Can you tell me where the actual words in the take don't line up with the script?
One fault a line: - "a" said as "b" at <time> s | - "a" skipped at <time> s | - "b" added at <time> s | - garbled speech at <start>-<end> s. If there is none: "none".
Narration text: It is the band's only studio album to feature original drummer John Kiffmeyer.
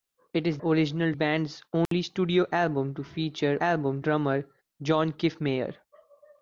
- "the" said as "original" at 0.6 s
- "original" said as "album" at 3.6 s